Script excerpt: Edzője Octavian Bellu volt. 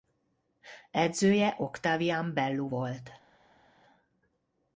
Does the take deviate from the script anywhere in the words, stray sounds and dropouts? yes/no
no